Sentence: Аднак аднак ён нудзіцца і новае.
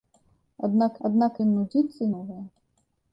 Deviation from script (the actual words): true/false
false